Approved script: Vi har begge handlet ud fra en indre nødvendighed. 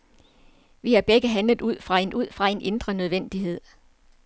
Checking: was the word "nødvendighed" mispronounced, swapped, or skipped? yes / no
no